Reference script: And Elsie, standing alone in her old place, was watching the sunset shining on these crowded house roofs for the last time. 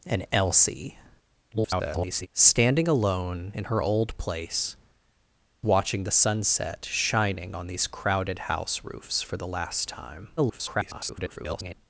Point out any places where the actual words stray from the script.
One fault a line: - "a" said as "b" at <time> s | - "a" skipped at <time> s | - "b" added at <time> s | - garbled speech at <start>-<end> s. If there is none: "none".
- garbled speech at 1.5-2.3 s
- "was" skipped at 4.8 s
- garbled speech at 10.4-11.7 s